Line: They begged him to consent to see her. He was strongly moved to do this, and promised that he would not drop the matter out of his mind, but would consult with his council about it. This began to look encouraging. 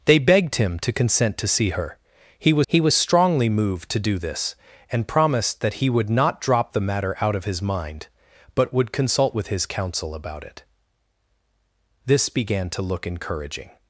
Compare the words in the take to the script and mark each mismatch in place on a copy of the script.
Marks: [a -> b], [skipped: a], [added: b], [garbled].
They begged him to consent to see her. He was [added: he was] strongly moved to do this, and promised that he would not drop the matter out of his mind, but would consult with his council about it. This began to look encouraging.